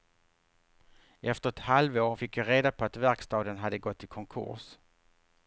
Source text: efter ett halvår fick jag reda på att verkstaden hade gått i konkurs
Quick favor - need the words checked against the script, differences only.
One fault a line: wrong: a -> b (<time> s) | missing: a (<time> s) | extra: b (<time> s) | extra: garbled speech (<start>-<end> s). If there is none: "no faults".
no faults